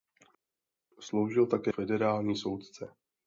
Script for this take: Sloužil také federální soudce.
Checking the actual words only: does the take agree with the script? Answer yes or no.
yes